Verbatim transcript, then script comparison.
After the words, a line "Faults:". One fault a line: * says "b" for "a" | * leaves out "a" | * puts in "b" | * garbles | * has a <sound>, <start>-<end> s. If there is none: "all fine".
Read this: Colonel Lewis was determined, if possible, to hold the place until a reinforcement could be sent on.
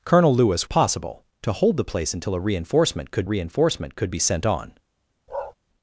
Colonel Lewis possible, to hold the place until a reinforcement could reinforcement could be sent on.
Faults:
* leaves out "was determined if"
* puts in "reinforcement could"
* has a bark, 5.3-5.5 s